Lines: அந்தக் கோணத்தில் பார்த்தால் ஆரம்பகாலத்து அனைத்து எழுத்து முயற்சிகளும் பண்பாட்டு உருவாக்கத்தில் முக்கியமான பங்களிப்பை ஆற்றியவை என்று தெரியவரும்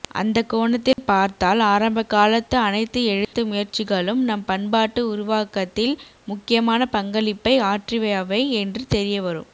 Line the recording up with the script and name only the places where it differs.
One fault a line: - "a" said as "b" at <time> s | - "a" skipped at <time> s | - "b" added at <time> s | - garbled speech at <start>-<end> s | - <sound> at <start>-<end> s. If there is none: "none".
- dropout at 0.9-1.0 s
- dropout at 3.2-3.3 s
- "நம்" added at 4.2 s